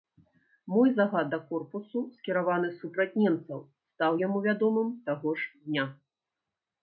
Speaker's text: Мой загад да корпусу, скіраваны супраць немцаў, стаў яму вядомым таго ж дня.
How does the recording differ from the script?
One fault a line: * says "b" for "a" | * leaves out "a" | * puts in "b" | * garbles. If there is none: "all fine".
all fine